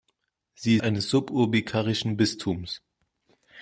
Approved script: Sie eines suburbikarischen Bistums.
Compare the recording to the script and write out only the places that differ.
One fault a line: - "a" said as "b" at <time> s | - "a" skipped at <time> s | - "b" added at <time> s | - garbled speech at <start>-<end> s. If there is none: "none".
none